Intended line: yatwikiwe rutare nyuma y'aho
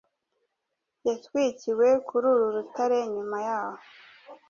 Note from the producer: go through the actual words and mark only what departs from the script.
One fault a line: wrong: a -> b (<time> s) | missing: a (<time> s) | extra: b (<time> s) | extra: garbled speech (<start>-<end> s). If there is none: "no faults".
extra: kuri uru (2.1 s)